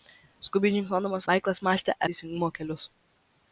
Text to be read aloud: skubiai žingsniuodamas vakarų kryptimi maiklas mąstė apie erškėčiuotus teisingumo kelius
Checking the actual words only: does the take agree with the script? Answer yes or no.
no